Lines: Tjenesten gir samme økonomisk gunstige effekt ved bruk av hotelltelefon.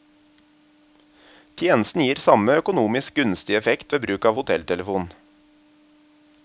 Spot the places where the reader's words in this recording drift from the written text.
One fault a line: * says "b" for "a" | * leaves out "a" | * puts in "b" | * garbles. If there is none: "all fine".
all fine